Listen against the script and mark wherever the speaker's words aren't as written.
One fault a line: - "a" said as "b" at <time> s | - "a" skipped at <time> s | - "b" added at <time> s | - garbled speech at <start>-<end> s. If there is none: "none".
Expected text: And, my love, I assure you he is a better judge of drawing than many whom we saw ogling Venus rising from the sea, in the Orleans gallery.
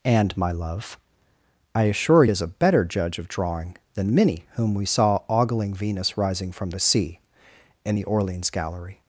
- "you he" skipped at 2.2 s